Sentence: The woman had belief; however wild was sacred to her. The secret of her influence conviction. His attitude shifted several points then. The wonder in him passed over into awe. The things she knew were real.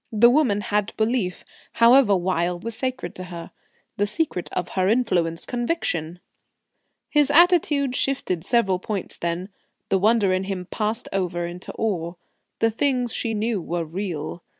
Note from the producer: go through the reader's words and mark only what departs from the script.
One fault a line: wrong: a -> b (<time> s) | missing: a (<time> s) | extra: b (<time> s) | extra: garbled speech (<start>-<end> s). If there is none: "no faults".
no faults